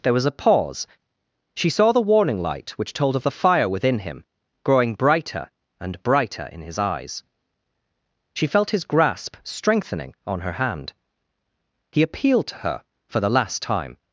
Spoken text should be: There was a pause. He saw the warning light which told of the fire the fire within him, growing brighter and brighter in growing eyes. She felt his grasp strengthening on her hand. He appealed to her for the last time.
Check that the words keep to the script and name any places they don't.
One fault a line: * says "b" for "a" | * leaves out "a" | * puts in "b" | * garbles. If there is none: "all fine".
* says "She" for "He"
* leaves out "the fire"
* says "his" for "growing"